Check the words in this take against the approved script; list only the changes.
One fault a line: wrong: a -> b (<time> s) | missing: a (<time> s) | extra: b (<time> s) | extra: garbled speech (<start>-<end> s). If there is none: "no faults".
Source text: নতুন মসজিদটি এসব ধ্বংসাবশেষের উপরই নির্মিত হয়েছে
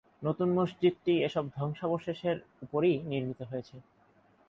no faults